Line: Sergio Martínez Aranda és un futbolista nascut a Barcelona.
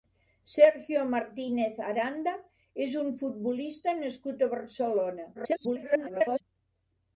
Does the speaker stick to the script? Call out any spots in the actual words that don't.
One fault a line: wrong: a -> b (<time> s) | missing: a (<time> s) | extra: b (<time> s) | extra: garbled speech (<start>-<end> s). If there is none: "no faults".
extra: garbled speech (5.3-6.4 s)